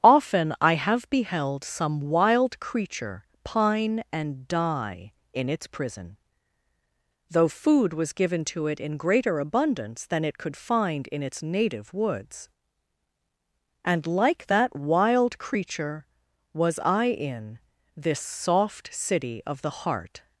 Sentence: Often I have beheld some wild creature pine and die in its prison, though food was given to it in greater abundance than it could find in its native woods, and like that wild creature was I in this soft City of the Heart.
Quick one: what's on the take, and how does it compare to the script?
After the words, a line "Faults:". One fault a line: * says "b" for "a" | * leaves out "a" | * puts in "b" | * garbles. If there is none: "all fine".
Often I have beheld some wild creature pine and die in its prison, though food was given to it in greater abundance than it could find in its native woods, and like that wild creature was I in this soft City of the Heart.
Faults:
all fine